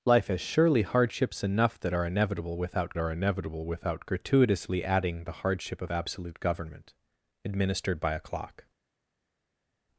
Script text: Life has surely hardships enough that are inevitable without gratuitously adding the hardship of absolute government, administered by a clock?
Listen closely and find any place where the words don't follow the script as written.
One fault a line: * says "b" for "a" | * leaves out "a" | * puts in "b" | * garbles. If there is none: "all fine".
* puts in "are inevitable without"